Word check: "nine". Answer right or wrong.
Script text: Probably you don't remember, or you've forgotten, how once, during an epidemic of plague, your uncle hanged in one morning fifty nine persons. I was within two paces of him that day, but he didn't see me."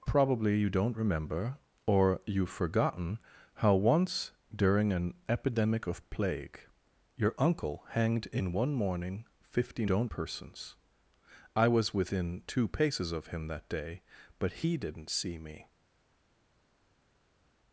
wrong